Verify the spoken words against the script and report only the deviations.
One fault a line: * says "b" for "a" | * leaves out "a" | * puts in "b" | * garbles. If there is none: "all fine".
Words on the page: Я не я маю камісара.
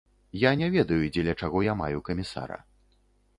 * puts in "ведаю дзеля чаго"